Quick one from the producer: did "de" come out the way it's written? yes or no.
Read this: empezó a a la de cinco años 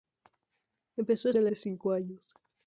yes